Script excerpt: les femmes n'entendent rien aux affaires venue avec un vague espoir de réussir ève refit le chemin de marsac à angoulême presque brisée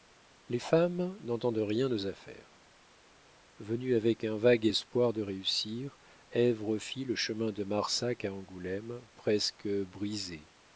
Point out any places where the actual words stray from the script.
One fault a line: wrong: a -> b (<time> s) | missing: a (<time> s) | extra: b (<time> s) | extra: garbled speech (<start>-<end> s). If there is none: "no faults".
no faults